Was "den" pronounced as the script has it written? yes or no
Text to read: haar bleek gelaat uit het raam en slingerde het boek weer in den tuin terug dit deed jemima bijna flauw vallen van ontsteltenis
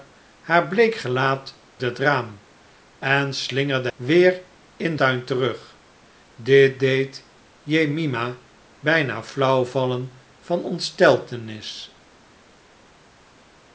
no